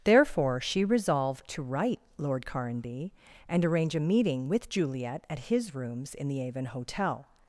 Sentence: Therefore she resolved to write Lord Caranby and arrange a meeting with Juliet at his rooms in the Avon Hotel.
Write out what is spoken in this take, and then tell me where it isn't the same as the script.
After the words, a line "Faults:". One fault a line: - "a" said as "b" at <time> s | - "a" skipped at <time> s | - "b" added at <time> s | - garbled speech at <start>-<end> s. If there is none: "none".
Therefore she resolved to write Lord Caranby and arrange a meeting with Juliet at his rooms in the Avon Hotel.
Faults:
none